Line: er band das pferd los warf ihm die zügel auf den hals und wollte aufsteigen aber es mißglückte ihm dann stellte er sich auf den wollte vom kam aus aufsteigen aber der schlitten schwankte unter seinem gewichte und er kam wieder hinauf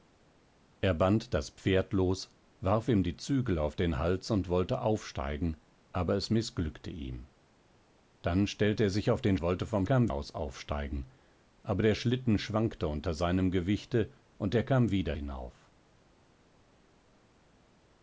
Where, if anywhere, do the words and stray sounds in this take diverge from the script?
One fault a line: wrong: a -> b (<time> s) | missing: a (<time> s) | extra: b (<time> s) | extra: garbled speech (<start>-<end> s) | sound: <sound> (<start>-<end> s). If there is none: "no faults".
no faults